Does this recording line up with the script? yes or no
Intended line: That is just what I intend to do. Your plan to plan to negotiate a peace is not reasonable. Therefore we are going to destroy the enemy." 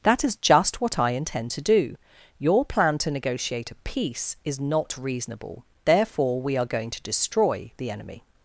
no